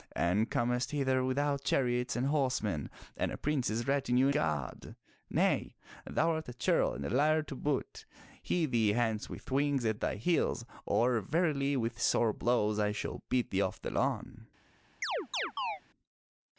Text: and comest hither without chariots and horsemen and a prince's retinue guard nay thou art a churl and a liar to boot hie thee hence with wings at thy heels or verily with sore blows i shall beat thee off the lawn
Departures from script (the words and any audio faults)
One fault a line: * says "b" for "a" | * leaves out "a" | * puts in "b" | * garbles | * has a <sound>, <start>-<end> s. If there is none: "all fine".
* has a chirp, 15.0-15.8 s